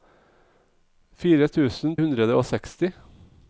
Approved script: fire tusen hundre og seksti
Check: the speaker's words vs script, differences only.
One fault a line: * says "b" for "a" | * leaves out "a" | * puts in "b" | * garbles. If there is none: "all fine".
all fine